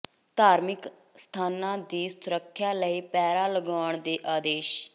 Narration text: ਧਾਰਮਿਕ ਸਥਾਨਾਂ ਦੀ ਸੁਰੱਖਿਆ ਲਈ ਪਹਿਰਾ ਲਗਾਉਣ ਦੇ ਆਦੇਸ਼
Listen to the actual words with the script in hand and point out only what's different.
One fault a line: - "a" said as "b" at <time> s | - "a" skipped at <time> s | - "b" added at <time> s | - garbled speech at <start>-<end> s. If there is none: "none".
none